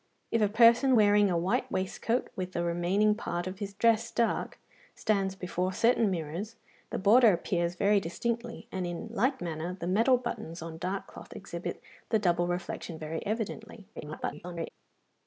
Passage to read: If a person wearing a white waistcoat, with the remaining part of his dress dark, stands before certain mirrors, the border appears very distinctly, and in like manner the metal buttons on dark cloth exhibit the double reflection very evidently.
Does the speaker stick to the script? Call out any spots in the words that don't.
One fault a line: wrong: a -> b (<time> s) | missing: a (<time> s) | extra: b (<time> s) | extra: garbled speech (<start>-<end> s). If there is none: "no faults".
extra: garbled speech (14.0-14.7 s)